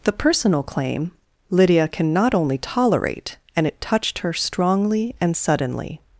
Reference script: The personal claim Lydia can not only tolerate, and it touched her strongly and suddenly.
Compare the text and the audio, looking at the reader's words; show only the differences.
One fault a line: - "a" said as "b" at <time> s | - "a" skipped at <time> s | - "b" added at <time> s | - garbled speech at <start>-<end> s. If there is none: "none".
none